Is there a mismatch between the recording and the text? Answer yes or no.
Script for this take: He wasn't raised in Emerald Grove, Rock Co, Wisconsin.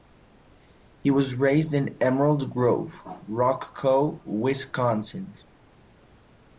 yes